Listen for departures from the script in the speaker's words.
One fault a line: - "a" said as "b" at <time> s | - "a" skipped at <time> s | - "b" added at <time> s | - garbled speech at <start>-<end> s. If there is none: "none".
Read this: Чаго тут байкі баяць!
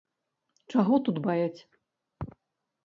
- "байкі" skipped at 1.2 s